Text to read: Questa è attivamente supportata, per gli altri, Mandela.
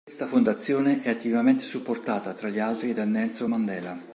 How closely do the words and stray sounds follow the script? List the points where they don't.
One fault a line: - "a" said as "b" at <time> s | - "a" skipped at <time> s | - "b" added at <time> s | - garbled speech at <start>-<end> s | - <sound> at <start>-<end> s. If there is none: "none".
- "fondazione" added at 0.2 s
- "per" said as "tra" at 2.3 s
- "da Nelson" added at 2.9 s